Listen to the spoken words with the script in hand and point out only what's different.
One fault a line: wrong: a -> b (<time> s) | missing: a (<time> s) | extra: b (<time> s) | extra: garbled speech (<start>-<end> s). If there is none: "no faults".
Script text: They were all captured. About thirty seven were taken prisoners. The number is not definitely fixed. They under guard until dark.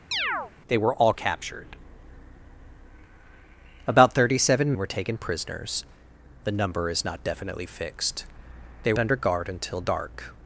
no faults